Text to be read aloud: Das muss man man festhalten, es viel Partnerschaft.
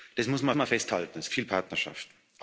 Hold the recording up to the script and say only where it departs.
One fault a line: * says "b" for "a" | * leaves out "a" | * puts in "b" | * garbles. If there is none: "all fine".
all fine